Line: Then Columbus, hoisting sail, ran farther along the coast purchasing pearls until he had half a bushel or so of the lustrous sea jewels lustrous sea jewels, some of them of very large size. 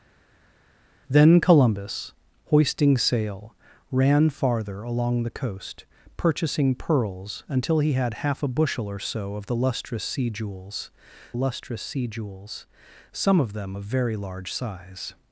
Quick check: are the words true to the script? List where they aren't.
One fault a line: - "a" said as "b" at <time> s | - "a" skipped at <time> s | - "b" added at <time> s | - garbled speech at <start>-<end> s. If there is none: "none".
none